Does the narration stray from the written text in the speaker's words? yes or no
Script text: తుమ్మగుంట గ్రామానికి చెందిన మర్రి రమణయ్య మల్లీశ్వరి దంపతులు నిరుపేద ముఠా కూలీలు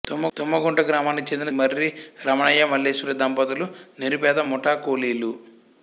no